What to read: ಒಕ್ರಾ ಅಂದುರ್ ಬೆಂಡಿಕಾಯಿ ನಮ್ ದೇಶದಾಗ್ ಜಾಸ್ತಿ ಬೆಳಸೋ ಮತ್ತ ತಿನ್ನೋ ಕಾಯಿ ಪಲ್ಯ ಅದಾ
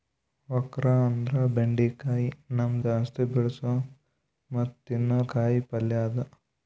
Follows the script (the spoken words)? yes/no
no